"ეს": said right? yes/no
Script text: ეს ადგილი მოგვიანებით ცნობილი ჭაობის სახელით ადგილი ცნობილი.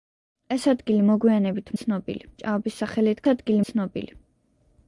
yes